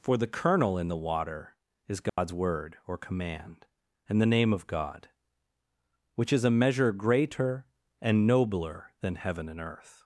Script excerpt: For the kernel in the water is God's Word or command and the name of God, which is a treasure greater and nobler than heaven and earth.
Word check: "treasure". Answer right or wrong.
wrong